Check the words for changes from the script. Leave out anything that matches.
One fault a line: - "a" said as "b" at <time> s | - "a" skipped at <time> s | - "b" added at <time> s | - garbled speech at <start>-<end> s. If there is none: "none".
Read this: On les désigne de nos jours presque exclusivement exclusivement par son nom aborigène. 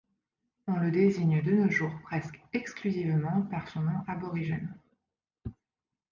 - "les" said as "le" at 0.8 s
- "exclusivement" skipped at 3.4 s